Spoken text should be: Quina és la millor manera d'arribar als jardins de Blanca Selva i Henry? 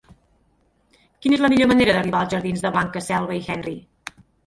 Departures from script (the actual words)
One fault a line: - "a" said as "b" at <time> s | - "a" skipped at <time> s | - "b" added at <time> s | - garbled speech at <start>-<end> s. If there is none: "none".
none